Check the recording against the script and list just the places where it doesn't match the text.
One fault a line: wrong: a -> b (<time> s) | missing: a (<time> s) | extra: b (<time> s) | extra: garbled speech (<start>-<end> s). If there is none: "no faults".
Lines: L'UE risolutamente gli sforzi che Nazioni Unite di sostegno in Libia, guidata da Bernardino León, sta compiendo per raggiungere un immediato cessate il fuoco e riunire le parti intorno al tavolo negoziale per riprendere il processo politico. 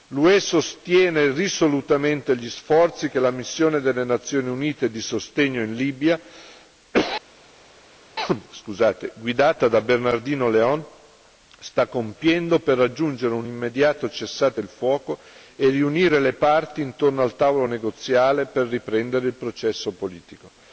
extra: sostiene (0.4 s)
extra: la missione delle (3.2 s)